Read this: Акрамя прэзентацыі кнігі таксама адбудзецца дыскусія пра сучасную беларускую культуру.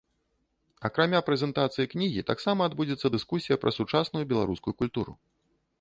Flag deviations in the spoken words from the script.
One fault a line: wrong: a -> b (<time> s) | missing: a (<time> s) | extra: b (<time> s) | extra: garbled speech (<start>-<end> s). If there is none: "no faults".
no faults